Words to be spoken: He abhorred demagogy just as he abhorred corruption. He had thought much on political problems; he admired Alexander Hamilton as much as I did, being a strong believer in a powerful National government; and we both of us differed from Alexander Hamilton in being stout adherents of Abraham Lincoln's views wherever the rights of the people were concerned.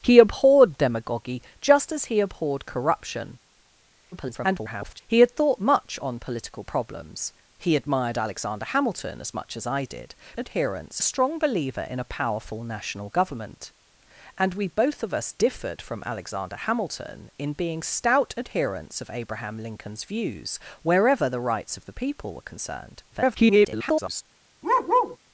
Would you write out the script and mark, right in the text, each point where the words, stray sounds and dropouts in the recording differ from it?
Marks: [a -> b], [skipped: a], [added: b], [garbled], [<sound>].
He abhorred demagogy just as he abhorred corruption. [garbled] He had thought much on political problems; he admired Alexander Hamilton as much as I did, [being -> adherents] a strong believer in a powerful National government; and we both of us differed from Alexander Hamilton in being stout adherents of Abraham Lincoln's views wherever the rights of the people were concerned. [garbled] [bark]